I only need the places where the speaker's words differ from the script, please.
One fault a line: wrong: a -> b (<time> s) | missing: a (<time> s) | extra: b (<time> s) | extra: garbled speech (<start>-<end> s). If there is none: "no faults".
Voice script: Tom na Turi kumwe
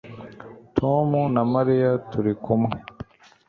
extra: Mariya (1.5 s)